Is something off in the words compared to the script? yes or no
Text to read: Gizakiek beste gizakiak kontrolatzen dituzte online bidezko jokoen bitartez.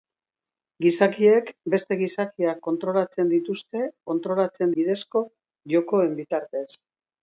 yes